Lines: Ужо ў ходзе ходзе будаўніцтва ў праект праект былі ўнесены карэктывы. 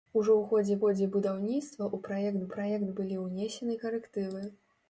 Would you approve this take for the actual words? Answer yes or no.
yes